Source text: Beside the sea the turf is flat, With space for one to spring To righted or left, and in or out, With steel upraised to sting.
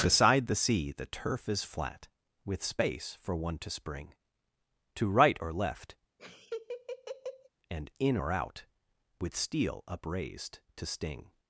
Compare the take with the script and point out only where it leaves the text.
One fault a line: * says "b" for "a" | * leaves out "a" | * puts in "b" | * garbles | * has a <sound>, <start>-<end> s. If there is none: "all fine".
* says "right" for "righted"
* has a laugh, 6.2-7.5 s